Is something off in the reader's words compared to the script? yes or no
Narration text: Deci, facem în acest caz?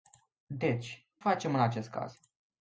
no